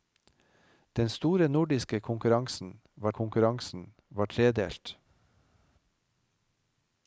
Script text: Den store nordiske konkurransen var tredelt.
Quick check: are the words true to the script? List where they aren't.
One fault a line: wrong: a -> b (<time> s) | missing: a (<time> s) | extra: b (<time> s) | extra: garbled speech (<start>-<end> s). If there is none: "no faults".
extra: konkurransen var (3.1 s)